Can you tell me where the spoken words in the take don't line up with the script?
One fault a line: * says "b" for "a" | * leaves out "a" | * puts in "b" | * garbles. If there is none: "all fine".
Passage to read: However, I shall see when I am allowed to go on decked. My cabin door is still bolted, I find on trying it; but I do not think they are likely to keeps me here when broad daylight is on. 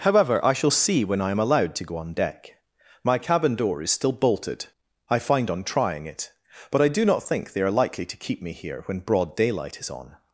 * says "deck" for "decked"
* says "keep" for "keeps"